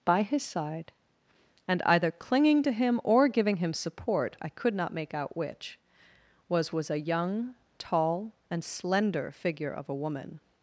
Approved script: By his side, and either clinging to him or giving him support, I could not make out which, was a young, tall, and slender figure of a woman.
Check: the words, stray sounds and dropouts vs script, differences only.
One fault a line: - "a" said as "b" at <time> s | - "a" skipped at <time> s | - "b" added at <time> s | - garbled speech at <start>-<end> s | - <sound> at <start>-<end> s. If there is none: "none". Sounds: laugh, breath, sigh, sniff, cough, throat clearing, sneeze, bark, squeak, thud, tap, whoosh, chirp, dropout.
- "was" added at 6.7 s